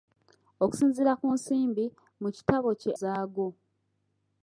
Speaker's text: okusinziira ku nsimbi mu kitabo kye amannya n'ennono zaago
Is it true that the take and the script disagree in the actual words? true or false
true